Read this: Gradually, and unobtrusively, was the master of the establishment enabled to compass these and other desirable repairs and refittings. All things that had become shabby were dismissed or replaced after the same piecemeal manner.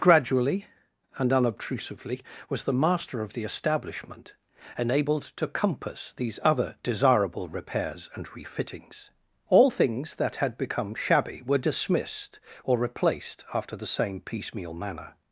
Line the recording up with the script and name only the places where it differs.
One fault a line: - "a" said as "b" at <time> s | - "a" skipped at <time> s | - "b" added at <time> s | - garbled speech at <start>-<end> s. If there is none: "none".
- "and" skipped at 6.4 s